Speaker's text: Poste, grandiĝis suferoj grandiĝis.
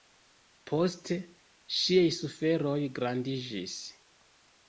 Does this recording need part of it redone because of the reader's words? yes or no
yes